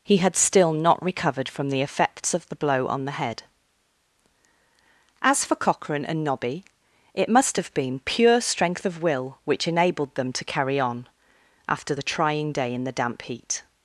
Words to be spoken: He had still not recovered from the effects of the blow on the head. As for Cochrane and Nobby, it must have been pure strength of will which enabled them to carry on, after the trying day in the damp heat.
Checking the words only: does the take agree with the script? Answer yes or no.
yes